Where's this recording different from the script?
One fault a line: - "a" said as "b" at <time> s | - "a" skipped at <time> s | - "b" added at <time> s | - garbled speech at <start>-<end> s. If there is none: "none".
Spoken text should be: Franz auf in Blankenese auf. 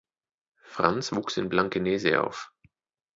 - "auf" said as "wuchs" at 1.1 s